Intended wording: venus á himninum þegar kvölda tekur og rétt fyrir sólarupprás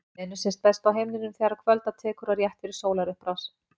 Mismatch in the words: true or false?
true